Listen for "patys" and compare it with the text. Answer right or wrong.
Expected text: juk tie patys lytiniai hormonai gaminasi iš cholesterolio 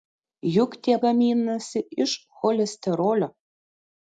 wrong